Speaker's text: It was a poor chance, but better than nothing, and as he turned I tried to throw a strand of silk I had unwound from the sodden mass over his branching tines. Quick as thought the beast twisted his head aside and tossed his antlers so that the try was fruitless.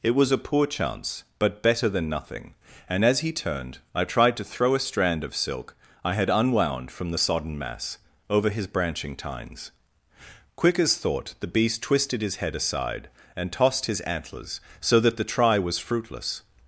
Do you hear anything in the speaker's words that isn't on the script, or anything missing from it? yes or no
no